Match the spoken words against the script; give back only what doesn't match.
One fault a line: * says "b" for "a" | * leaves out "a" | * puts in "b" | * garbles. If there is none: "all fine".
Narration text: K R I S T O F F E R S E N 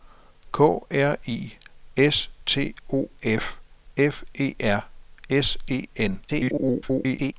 * garbles